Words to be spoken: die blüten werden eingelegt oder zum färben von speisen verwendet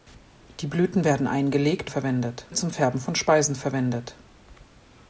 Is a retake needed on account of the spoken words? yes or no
yes